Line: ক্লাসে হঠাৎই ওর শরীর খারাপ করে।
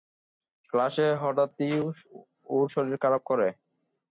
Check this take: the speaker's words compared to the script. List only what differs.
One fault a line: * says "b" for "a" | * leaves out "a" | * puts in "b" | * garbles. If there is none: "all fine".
all fine